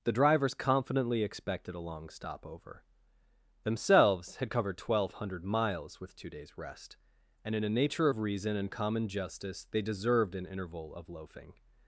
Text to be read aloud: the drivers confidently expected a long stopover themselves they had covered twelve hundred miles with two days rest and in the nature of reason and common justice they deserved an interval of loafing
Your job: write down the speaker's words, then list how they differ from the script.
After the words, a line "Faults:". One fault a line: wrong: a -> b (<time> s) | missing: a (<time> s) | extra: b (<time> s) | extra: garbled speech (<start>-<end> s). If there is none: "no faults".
the drivers confidently expected a long stopover themselves had covered twelve hundred miles with two days rest and in a nature of reason and common justice they deserved an interval of loafing
Faults:
missing: they (4.4 s)
wrong: the -> a (7.6 s)